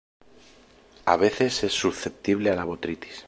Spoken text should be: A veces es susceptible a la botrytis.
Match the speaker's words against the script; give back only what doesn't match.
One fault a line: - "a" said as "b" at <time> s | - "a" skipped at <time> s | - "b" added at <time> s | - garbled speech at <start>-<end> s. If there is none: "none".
none